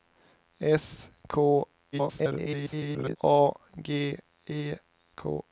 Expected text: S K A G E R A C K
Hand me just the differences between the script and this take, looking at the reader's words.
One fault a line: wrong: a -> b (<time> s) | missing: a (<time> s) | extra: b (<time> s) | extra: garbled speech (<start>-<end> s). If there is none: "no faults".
extra: garbled speech (1.9-3.2 s)
missing: R A C (4.7 s)